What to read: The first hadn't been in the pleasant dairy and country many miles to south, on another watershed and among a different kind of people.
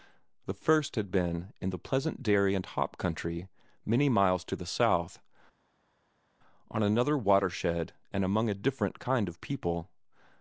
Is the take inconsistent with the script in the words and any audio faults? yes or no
yes